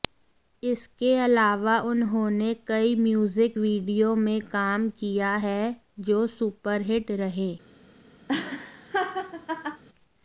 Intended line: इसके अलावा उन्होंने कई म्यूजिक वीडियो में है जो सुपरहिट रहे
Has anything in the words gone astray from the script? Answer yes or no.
yes